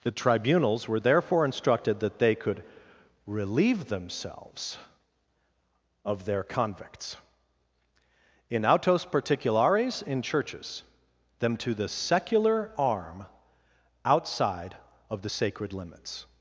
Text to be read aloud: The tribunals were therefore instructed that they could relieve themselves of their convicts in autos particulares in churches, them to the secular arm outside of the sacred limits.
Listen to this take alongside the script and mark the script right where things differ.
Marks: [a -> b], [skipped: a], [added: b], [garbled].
The tribunals were therefore instructed that they could relieve themselves of their convicts in autos particulares in churches, them to the secular arm outside of the sacred limits.